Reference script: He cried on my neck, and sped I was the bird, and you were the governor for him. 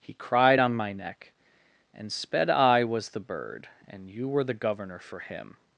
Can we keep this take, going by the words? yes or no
yes